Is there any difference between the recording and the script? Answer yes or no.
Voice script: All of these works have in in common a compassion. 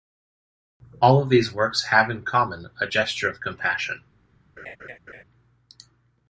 yes